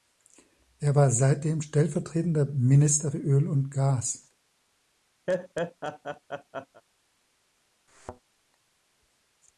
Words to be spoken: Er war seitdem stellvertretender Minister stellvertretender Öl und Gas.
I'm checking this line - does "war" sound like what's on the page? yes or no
yes